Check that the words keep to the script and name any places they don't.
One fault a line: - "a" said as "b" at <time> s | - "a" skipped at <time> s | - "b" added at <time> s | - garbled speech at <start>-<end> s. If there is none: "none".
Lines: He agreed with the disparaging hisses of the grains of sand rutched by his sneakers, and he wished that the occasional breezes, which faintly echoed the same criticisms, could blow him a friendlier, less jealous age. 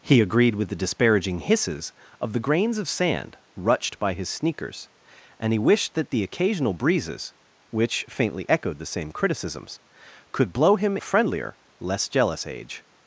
none